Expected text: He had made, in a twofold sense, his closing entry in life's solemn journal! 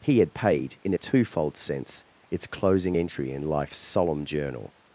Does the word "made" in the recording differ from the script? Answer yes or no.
yes